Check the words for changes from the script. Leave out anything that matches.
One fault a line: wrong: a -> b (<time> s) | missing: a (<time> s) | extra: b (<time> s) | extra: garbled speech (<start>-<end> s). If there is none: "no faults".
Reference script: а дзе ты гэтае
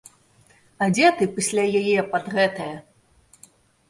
extra: пасля яе пад (1.4 s)